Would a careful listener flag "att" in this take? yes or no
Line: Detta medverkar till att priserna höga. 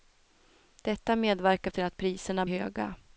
no